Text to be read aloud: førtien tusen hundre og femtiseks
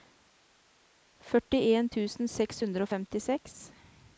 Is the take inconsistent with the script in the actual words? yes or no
yes